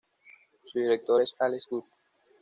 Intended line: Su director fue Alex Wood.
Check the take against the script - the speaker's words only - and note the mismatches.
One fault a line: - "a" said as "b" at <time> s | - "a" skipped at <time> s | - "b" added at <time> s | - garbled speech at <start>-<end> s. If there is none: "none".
- "fue" said as "es" at 1.2 s